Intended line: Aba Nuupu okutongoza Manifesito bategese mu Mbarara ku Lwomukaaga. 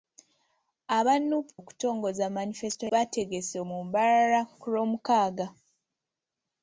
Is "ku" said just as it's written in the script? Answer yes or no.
yes